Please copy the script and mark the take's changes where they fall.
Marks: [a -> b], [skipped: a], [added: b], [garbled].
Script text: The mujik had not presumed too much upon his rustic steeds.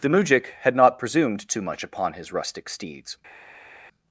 The mujik had not presumed too much upon his rustic steeds.